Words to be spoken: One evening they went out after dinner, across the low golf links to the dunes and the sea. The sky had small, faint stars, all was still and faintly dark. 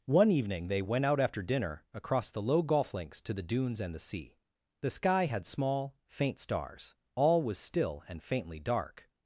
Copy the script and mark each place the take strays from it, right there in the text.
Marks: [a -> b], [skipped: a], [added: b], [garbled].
One evening they went out after dinner, across the low golf links to the dunes and the sea. The sky had small, faint stars, all was still and faintly dark.